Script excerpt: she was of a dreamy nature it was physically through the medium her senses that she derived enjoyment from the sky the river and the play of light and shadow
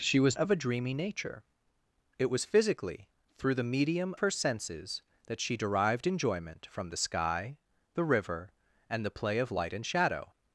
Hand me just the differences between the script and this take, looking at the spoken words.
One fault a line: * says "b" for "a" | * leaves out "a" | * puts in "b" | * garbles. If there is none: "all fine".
all fine